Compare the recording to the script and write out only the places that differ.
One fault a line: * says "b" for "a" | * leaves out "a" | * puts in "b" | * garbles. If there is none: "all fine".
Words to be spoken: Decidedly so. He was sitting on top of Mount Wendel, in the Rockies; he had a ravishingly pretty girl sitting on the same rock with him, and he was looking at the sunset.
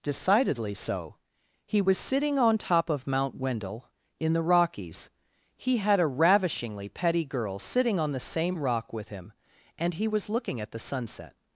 * says "petty" for "pretty"